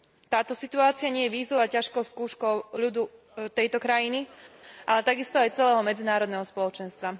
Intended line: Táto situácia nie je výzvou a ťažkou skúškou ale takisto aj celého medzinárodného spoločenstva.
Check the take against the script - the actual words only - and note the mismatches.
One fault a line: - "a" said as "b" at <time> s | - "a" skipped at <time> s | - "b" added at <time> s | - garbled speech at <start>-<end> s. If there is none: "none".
- "ľudu tejto krajiny" added at 2.8 s